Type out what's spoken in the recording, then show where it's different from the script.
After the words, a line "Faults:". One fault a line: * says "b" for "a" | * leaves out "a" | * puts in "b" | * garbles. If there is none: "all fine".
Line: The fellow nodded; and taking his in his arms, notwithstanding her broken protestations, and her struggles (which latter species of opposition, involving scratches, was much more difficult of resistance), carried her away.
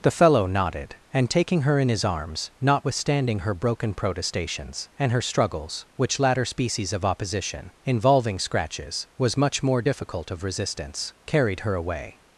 The fellow nodded; and taking her in his arms, notwithstanding her broken protestations, and her struggles (which latter species of opposition, involving scratches, was much more difficult of resistance), carried her away.
Faults:
* says "her" for "his"